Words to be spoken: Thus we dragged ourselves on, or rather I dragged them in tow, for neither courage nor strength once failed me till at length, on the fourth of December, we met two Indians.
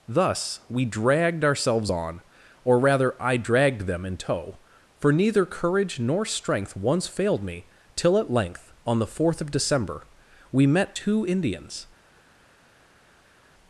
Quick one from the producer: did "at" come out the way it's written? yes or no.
yes